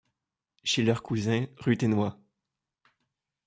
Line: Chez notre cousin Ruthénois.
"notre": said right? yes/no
no